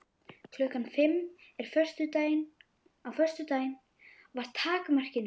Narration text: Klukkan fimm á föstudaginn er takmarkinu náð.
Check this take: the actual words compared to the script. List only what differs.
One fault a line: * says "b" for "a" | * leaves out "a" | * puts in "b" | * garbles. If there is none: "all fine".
* says "var" for "er"